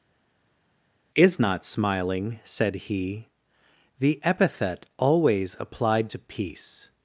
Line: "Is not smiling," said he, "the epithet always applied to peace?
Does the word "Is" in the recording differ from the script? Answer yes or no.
no